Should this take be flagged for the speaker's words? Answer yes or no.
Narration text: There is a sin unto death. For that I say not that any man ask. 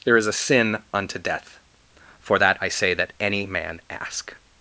yes